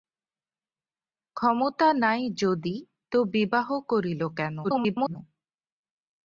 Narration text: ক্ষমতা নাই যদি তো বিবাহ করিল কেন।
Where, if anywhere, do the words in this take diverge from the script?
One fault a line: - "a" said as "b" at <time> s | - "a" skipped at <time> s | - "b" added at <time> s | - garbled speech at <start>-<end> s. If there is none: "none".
- garbled speech at 4.6-5.2 s